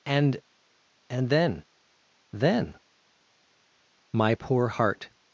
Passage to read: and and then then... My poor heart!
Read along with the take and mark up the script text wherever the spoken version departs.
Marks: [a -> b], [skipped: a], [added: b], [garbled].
and and then then... My poor heart!